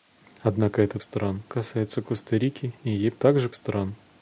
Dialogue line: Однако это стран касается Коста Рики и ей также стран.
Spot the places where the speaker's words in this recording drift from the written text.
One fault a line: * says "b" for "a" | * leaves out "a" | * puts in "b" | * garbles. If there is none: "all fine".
all fine